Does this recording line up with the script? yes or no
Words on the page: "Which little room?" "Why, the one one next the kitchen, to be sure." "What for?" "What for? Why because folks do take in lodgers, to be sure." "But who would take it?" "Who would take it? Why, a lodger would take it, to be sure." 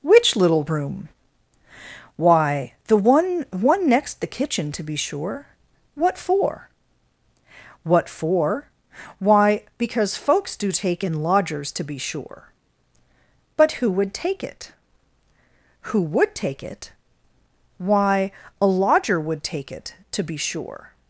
yes